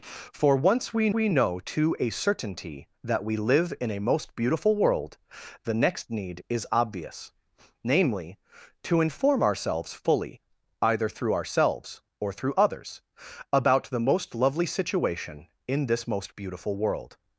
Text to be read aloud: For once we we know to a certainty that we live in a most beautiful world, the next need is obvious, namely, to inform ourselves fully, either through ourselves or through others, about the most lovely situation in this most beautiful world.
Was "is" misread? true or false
false